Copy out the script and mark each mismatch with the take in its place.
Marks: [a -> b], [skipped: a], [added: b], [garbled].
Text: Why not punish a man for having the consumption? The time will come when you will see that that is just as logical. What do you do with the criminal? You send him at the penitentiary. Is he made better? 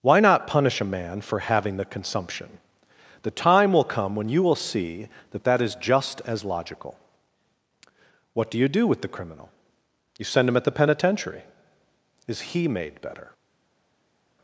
Why not punish a man for having the consumption? The time will come when you will see that that is just as logical. What do you do with the criminal? You send him at the penitentiary. Is he made better?